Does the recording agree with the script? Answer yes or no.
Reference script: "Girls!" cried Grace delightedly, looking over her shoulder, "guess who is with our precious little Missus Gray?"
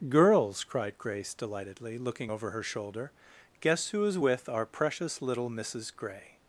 yes